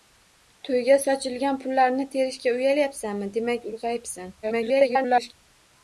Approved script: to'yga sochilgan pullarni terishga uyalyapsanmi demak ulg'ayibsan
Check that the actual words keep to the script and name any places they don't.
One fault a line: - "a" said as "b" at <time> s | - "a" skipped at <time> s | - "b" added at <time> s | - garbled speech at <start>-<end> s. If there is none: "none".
- garbled speech at 4.4-5.3 s